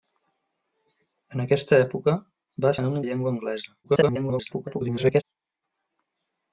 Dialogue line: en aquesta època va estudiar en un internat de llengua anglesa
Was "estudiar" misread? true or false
true